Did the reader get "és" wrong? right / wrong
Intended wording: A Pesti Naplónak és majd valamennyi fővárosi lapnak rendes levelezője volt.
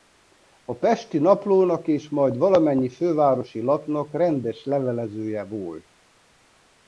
right